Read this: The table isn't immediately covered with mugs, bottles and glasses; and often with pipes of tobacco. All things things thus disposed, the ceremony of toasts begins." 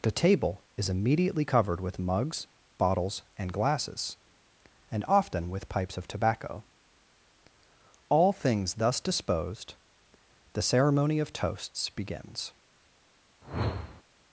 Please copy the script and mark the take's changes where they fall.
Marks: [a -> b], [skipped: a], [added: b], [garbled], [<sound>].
The table [isn't -> is] immediately covered with mugs, bottles and glasses; and often with pipes of tobacco. All things [skipped: things] thus disposed, the ceremony of toasts begins." [whoosh]